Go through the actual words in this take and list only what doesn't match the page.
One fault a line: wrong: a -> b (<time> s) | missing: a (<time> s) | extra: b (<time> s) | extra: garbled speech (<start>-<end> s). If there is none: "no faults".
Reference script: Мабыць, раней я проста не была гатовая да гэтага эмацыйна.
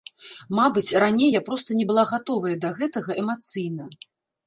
no faults